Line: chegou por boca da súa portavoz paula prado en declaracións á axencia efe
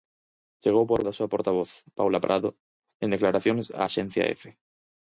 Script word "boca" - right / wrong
wrong